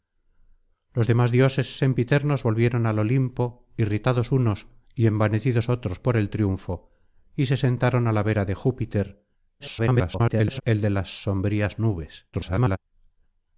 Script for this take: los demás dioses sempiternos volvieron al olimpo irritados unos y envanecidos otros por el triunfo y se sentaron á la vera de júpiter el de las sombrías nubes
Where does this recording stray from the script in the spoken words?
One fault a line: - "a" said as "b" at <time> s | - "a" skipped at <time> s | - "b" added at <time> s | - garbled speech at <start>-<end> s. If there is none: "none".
- garbled speech at 9.6-10.6 s
- garbled speech at 12.3-12.8 s